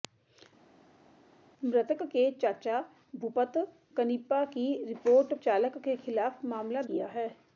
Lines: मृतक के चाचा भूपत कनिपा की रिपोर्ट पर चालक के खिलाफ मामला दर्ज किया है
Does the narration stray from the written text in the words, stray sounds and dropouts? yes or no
yes